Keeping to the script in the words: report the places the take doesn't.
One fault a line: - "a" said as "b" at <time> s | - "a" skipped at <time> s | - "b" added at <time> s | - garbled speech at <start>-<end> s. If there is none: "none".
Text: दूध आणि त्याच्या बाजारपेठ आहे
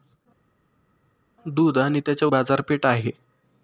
none